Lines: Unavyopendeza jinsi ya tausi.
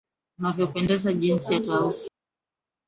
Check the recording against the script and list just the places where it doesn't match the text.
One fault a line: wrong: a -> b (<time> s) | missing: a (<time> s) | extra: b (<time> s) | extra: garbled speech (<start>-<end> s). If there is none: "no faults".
no faults